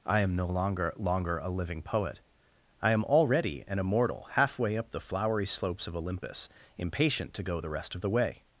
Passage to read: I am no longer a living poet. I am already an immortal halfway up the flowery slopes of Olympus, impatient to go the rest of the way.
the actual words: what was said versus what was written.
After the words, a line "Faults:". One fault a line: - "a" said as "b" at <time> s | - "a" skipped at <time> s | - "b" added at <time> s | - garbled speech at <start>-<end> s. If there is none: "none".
I am no longer longer a living poet. I am already an immortal halfway up the flowery slopes of Olympus, impatient to go the rest of the way.
Faults:
- "longer" added at 1.0 s